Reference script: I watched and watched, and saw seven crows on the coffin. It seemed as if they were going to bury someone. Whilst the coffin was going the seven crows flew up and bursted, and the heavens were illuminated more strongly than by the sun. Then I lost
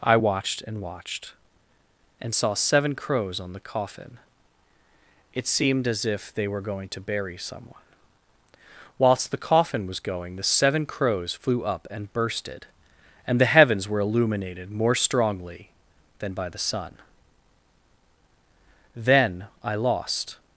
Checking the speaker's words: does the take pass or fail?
pass